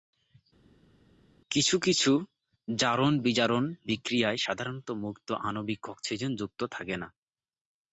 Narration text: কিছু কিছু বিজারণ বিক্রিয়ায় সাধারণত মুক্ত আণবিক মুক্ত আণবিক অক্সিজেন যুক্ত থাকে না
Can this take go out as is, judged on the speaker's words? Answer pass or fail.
fail